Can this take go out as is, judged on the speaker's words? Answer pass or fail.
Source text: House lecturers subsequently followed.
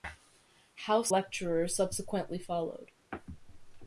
pass